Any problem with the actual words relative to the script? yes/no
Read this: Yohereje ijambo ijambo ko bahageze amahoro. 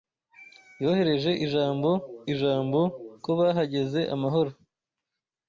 no